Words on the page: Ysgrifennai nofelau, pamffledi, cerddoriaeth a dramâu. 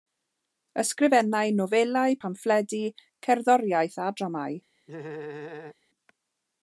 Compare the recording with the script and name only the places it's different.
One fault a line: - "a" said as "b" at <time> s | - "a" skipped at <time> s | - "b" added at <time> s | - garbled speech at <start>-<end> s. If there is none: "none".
none